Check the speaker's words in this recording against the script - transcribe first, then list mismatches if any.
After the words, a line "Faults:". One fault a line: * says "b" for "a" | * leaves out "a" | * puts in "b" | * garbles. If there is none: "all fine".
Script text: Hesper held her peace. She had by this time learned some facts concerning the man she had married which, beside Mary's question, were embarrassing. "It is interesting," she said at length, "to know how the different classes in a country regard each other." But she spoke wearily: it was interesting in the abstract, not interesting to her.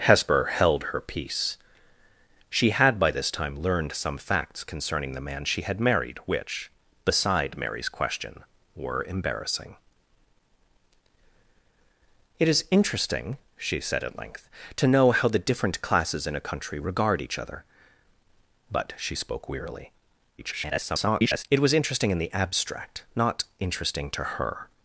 Hesper held her peace. She had by this time learned some facts concerning the man she had married which, beside Mary's question, were embarrassing. "It is interesting," she said at length, "to know how the different classes in a country regard each other." But she spoke wearily: [garbled] it was interesting in the abstract, not interesting to her.
Faults:
* garbles